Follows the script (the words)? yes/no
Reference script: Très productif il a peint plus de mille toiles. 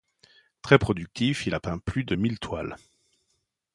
yes